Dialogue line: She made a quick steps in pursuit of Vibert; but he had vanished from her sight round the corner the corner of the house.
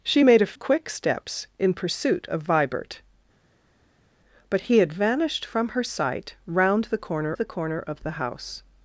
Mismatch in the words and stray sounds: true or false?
false